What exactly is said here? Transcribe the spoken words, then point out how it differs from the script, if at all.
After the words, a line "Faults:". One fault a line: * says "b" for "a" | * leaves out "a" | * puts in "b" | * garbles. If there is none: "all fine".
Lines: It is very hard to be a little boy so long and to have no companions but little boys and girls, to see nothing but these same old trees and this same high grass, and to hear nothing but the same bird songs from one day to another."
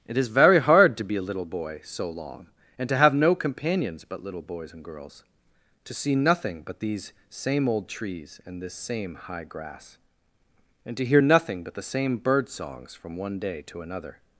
It is very hard to be a little boy so long and to have no companions but little boys and girls, to see nothing but these same old trees and this same high grass, and to hear nothing but the same bird songs from one day to another."
Faults:
all fine